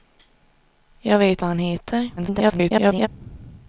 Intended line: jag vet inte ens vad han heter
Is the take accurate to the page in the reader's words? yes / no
no